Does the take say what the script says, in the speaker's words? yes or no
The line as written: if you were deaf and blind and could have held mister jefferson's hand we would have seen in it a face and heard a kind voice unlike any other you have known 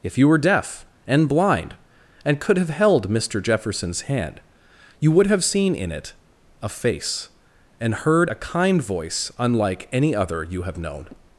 no